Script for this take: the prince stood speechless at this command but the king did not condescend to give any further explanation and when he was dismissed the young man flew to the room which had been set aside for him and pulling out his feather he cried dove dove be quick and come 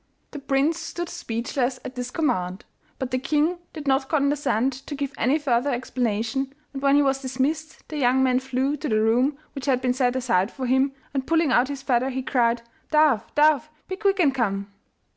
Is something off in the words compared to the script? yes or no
no